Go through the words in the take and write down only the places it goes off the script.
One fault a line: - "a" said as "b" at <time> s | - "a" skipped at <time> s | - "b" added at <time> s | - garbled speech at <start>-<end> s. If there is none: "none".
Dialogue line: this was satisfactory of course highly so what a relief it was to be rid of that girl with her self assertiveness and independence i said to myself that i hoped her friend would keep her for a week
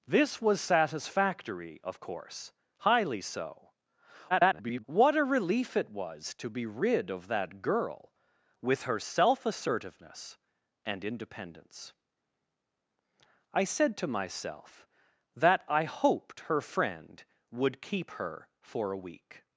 - garbled speech at 4.3-4.8 s